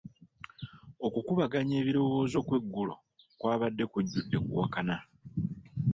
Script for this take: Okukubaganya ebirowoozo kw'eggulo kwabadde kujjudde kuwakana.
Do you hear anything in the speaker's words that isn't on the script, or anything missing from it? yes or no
no